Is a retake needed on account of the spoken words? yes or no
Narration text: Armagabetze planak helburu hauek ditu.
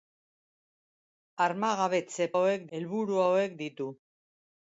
yes